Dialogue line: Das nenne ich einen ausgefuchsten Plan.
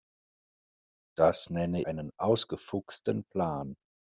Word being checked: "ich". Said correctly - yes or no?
no